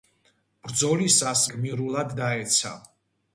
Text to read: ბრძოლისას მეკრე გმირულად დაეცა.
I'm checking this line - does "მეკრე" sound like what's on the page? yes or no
no